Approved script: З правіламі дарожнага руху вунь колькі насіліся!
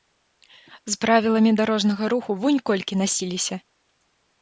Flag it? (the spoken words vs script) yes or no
no